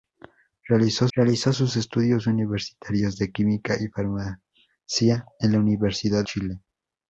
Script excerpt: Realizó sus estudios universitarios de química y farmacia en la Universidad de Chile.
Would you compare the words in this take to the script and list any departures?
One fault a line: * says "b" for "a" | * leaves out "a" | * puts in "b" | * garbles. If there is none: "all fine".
* puts in "realizó"
* leaves out "de"